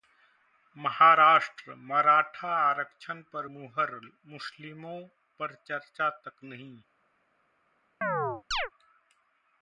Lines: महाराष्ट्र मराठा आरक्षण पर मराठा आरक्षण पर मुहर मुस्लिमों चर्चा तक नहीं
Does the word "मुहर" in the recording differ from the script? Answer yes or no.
yes